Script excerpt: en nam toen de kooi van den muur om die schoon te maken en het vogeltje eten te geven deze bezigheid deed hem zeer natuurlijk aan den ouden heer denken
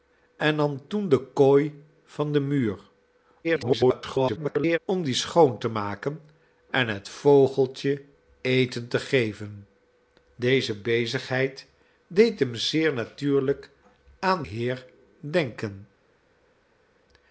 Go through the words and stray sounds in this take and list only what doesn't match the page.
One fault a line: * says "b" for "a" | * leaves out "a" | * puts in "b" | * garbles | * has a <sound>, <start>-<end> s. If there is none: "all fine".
* garbles
* leaves out "den ouden"